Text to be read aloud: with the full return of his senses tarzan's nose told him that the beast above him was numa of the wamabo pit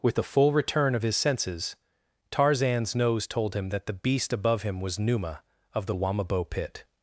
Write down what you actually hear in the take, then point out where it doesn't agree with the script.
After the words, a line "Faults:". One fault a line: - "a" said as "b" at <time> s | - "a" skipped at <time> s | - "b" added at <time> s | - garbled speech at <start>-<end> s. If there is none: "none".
with the full return of his senses tarzan's nose told him that the beast above him was numa of the wamabo pit
Faults:
none